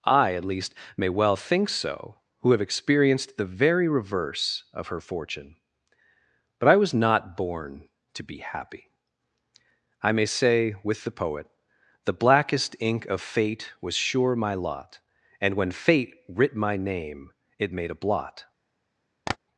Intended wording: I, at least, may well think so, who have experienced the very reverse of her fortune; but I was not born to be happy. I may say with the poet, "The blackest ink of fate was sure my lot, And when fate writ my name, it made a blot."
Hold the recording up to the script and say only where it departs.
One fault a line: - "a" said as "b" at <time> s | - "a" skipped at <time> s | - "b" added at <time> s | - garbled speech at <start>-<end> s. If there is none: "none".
none